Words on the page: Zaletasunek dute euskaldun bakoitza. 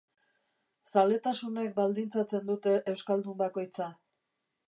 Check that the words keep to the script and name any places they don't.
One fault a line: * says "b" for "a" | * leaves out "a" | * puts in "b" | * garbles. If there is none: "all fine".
* puts in "baldintzatzen"